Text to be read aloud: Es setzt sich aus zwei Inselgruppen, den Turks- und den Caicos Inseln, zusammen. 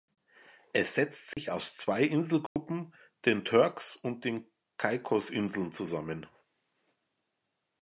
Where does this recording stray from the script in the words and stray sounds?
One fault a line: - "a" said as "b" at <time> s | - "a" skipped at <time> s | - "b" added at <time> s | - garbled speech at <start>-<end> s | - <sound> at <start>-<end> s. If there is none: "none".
- dropout at 1.3-1.4 s
- dropout at 2.5-2.6 s